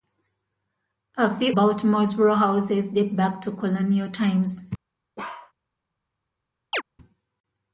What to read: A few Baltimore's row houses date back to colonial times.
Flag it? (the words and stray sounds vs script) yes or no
yes